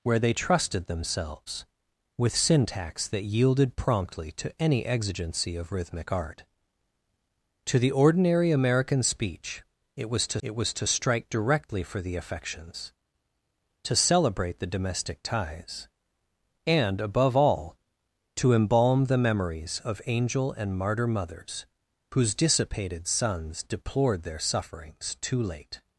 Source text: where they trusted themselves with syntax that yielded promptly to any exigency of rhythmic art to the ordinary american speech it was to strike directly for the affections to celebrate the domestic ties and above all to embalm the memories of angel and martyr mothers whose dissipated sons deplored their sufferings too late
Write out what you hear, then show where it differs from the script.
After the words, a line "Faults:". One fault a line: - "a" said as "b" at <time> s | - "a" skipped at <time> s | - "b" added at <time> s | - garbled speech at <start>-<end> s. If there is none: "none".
where they trusted themselves with syntax that yielded promptly to any exigency of rhythmic art to the ordinary american speech it was to it was to strike directly for the affections to celebrate the domestic ties and above all to embalm the memories of angel and martyr mothers whose dissipated sons deplored their sufferings too late
Faults:
- "it was to" added at 10.4 s